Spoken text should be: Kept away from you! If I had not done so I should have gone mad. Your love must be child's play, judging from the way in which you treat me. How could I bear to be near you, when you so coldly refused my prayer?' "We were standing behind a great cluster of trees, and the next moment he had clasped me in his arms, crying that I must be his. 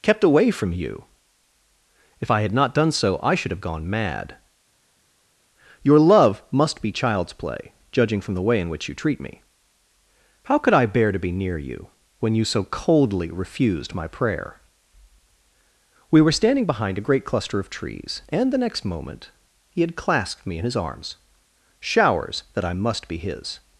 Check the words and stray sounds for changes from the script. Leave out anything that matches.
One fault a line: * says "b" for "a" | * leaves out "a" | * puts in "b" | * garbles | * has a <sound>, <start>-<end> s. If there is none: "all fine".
* says "showers" for "crying"